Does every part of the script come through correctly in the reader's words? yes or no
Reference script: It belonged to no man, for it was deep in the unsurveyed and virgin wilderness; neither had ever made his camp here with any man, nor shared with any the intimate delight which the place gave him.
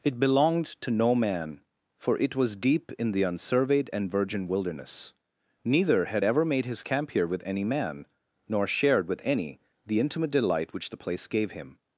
yes